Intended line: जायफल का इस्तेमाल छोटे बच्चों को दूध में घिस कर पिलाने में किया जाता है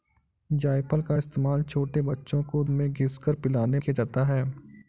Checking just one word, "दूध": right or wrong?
wrong